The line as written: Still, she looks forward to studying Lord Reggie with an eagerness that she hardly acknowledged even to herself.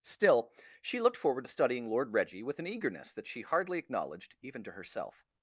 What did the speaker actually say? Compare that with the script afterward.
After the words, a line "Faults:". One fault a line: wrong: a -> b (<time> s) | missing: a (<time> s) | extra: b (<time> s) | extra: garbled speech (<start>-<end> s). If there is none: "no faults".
Still, she looked forward to studying Lord Reggie with an eagerness that she hardly acknowledged even to herself.
Faults:
wrong: looks -> looked (1.0 s)